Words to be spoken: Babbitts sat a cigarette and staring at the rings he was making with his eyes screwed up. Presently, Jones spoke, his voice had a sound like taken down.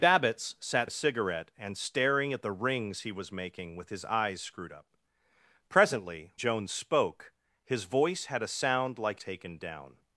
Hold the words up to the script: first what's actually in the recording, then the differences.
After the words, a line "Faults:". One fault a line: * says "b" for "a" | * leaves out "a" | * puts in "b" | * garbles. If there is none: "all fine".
Babbitts sat a cigarette and staring at the rings he was making with his eyes screwed up. Presently, Jones spoke, his voice had a sound like taken down.
Faults:
all fine